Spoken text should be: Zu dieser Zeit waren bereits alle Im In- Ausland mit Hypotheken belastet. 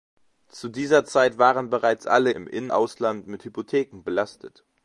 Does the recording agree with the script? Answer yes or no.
yes